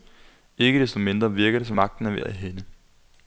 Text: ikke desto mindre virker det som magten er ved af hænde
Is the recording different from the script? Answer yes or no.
no